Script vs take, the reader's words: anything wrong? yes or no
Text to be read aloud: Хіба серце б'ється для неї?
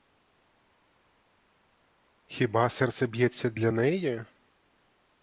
no